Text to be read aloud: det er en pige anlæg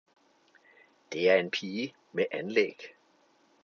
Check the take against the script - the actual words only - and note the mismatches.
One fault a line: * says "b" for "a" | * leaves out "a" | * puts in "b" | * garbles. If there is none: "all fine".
* puts in "med"